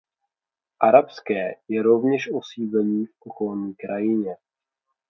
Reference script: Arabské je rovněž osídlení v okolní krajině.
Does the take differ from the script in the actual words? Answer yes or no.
no